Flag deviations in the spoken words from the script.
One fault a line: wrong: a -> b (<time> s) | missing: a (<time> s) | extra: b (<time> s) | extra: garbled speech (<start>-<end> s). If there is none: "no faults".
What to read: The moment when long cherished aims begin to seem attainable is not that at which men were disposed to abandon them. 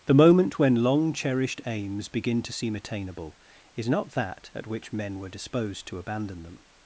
no faults